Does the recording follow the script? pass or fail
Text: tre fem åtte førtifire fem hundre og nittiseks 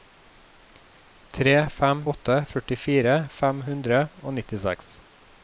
pass